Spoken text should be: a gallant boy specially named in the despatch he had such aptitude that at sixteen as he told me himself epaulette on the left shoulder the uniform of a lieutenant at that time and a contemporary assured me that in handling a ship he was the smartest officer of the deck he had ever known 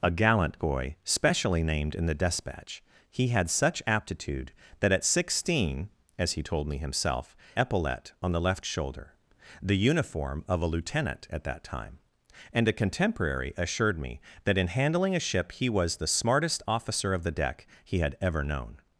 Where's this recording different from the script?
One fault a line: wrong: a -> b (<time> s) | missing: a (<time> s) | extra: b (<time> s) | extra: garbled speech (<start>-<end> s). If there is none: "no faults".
no faults